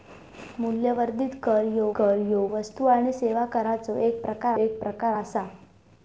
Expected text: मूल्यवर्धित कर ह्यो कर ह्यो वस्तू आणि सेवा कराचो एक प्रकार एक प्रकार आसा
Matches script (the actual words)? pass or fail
pass